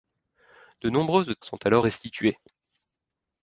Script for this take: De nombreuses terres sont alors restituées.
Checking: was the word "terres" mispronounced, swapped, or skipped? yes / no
yes